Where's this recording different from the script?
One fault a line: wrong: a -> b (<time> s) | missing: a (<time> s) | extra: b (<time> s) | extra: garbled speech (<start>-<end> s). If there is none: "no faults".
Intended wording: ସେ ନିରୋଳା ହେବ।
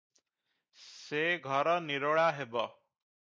extra: ଘର (1.4 s)